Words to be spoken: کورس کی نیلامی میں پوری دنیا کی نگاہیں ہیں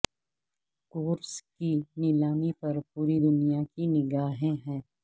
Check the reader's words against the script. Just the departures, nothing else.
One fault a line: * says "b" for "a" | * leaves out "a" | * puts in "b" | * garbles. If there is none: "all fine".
* says "پر" for "میں"